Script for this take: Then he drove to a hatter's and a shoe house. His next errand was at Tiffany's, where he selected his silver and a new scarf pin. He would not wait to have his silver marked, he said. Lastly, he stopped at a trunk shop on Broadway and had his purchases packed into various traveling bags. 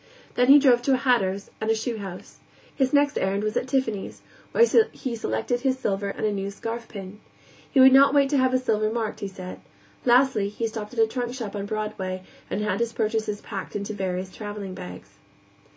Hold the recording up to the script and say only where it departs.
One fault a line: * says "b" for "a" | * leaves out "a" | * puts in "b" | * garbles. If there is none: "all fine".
all fine